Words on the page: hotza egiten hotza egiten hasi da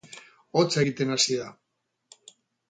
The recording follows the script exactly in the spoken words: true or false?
false